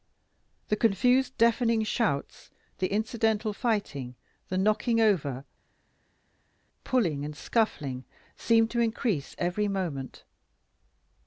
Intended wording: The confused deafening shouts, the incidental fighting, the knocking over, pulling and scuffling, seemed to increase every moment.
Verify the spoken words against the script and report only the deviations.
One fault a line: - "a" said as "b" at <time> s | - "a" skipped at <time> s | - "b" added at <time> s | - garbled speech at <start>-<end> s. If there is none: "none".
none